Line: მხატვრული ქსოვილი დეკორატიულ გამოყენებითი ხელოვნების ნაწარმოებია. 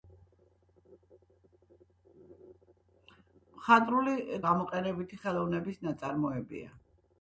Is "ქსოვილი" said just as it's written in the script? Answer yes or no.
no